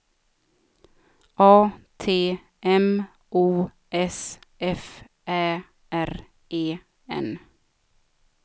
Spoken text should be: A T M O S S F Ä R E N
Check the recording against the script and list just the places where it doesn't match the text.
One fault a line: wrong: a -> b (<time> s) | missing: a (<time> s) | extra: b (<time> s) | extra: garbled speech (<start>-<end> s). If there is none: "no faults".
missing: S (4.4 s)